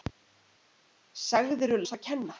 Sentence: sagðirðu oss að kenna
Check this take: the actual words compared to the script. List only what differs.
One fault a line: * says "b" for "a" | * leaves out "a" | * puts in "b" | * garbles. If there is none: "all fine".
all fine